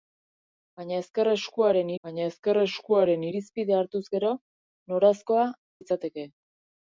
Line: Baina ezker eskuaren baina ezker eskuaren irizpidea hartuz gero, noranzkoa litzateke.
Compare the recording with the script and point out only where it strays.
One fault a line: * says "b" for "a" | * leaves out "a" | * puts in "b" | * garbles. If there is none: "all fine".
all fine